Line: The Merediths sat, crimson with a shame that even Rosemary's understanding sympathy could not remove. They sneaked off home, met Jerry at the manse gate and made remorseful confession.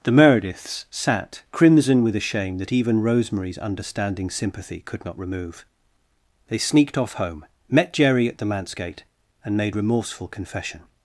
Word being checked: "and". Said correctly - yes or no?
yes